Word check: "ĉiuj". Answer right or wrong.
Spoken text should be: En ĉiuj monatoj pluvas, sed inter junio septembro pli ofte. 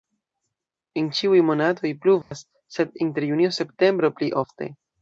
right